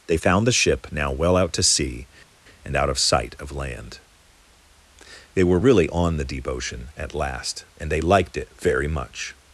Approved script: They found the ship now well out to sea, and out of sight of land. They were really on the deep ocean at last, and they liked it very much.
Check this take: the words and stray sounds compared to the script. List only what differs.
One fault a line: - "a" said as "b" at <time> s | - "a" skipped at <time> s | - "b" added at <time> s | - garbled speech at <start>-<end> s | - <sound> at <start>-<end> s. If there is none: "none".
none